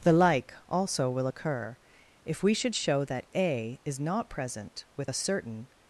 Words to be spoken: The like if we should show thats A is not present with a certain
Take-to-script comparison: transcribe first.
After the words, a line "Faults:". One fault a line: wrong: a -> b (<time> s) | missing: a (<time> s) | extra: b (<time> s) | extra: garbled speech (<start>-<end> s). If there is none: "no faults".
The like also will' occur, if we should show that A is not present with a certain
Faults:
extra: also will occur (0.7 s)
wrong: thats -> that (3.0 s)